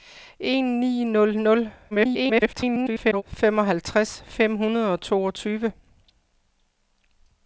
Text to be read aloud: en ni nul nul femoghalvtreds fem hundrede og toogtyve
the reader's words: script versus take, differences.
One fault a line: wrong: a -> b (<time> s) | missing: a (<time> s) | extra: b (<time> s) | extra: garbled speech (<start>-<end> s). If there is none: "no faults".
extra: garbled speech (1.9-3.2 s)